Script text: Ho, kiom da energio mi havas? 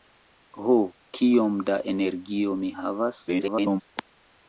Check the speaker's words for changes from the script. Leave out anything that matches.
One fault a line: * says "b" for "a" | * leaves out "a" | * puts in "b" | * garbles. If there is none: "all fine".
* garbles